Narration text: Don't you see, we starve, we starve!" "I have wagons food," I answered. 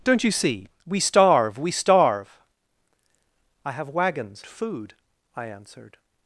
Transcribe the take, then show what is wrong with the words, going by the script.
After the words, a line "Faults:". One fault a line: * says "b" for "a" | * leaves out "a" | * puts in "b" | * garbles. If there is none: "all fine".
Don't you see, we starve, we starve!" "I have wagons food," I answered.
Faults:
all fine